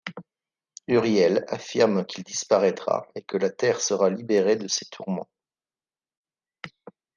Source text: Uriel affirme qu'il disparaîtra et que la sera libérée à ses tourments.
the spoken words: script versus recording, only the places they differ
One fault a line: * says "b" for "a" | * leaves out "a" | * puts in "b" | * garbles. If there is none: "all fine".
* puts in "terre"
* says "de" for "à"